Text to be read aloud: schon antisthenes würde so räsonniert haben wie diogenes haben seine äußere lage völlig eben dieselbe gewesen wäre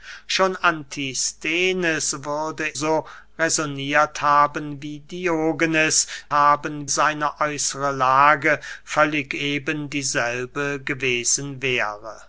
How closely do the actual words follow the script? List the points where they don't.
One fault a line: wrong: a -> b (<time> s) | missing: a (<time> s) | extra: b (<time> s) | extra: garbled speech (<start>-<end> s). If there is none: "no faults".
no faults